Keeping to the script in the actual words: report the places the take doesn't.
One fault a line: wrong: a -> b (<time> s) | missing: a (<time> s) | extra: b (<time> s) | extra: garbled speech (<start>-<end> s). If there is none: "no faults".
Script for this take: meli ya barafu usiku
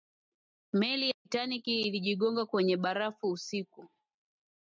extra: titanic ilijigonga kwenye (1.2 s)